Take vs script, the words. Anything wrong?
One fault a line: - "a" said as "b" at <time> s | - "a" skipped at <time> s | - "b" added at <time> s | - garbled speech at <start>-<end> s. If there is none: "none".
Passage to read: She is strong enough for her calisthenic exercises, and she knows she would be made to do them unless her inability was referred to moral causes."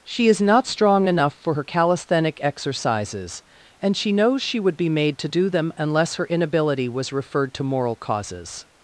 - "not" added at 0.4 s